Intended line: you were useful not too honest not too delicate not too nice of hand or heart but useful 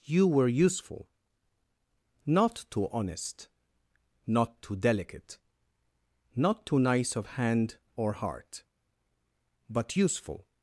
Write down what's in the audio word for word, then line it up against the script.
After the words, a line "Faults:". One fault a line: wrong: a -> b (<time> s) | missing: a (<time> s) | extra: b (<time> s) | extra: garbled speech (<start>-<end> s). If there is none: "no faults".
you were useful not too honest not too delicate not too nice of hand or heart but useful
Faults:
no faults